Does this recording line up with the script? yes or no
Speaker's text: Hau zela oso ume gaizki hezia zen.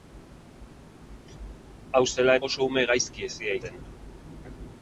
yes